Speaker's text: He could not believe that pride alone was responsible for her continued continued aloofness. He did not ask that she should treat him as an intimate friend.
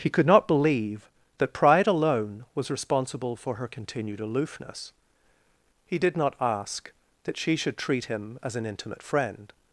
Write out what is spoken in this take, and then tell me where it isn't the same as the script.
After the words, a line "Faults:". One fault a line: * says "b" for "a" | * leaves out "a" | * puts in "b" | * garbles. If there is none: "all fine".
He could not believe that pride alone was responsible for her continued aloofness. He did not ask that she should treat him as an intimate friend.
Faults:
* leaves out "continued"